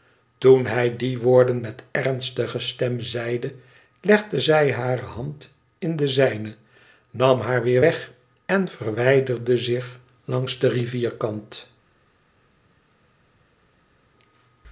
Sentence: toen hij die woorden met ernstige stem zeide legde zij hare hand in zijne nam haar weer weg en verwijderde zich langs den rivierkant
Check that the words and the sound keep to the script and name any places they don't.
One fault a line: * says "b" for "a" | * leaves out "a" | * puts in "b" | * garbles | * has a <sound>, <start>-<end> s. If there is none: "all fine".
* puts in "de"